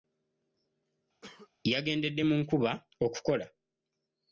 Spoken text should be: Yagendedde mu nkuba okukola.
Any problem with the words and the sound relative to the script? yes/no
yes